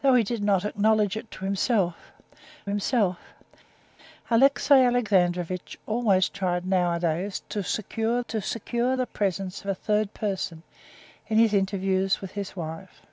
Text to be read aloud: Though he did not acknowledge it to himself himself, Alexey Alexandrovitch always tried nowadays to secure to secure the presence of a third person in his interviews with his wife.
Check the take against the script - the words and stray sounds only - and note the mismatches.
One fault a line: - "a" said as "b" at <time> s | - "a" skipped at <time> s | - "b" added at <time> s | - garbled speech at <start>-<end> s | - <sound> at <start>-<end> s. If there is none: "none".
none